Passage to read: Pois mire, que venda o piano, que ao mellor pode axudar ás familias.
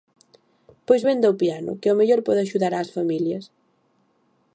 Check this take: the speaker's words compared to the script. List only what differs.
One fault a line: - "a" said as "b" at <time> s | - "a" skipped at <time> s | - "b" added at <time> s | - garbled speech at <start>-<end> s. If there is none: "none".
- "mire que" skipped at 1.0 s